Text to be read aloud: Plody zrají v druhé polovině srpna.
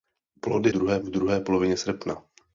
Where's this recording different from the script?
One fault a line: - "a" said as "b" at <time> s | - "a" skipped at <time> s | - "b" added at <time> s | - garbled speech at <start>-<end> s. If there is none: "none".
- "zrají" said as "druhé" at 0.7 s